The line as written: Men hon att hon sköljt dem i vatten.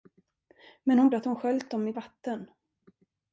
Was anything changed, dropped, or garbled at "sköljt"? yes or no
no